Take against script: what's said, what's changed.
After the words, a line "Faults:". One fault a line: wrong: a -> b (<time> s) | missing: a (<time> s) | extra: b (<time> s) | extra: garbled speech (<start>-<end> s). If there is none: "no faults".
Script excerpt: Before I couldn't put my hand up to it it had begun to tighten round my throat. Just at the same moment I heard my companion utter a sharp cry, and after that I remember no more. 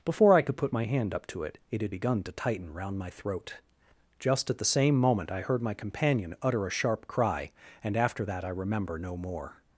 Before I could put my hand up to it it had begun to tighten round my throat. Just at the same moment I heard my companion utter a sharp cry, and after that I remember no more.
Faults:
wrong: couldn't -> could (0.4 s)